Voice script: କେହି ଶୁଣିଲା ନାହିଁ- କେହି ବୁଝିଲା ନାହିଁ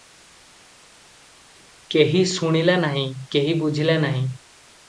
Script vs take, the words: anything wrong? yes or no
no